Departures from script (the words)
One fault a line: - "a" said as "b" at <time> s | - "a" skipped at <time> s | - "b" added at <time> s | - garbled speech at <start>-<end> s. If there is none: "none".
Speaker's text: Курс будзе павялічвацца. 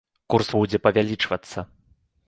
none